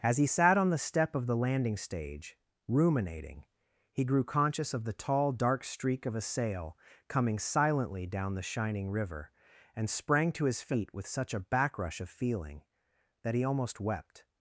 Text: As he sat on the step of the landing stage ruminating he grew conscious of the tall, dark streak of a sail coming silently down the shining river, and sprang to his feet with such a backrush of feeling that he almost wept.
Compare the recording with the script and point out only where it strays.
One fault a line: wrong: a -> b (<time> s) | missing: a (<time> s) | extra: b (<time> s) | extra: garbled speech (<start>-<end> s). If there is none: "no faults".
no faults